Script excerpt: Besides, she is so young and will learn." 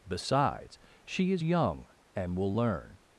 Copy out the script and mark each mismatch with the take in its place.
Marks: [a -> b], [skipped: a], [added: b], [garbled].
Besides, she is [skipped: so] young and will learn."